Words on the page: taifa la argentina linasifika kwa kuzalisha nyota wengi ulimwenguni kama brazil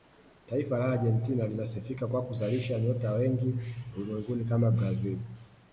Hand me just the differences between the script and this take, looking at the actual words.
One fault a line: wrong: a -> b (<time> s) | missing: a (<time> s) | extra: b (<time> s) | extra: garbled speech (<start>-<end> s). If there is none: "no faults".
no faults